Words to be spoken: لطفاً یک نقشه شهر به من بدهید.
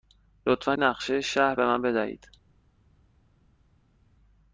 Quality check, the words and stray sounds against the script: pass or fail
fail